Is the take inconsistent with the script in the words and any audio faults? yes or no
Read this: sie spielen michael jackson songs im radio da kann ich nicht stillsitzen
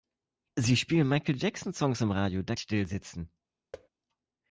yes